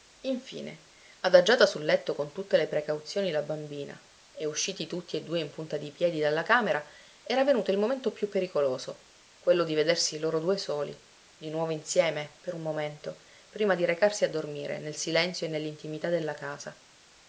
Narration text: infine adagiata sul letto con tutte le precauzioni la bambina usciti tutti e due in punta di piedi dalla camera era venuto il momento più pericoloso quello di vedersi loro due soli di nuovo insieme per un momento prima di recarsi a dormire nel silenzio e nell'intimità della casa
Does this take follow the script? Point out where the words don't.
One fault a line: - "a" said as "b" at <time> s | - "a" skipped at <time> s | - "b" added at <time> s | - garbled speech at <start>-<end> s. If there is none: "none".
- "e" added at 4.3 s